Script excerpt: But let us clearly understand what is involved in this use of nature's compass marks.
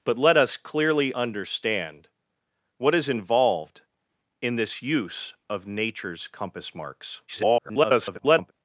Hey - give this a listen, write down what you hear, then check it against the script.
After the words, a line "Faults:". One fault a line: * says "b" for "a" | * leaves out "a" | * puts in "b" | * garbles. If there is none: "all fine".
But let us clearly understand what is involved in this use of nature's compass marks. [garbled]
Faults:
* garbles